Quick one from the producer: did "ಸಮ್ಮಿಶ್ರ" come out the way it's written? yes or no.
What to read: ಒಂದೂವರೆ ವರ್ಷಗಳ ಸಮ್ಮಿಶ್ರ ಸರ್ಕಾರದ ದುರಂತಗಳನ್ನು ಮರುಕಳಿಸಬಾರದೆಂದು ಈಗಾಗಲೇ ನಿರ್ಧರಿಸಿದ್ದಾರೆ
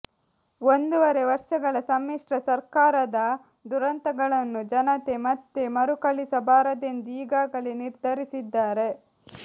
yes